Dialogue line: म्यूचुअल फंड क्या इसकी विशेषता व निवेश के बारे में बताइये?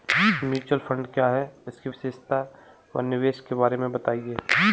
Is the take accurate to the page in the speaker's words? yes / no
no